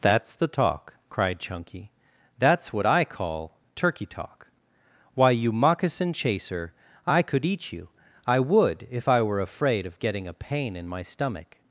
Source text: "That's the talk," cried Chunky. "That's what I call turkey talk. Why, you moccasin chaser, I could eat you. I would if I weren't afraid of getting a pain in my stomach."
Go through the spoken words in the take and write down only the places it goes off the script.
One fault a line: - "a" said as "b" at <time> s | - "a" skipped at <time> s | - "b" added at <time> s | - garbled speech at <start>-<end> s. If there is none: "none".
- "weren't" said as "were" at 9.2 s